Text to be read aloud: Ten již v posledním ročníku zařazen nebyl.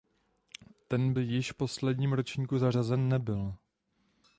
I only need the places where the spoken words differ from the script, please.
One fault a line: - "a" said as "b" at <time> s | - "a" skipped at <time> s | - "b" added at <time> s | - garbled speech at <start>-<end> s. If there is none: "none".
none